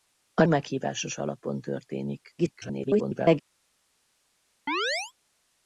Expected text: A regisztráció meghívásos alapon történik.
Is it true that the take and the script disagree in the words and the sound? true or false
true